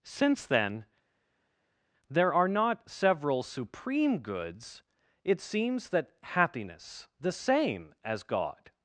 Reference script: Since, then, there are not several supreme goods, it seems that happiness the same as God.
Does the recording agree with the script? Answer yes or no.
yes